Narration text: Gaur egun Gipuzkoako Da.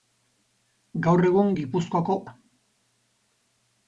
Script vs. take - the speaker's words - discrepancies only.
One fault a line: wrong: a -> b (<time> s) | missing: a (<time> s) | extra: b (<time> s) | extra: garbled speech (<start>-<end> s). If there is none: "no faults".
no faults